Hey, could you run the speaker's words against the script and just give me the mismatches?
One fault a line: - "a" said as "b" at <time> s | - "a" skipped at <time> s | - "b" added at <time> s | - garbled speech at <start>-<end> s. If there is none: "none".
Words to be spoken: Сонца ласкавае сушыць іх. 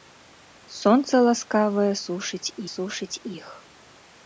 - "сушыць" added at 2.7 s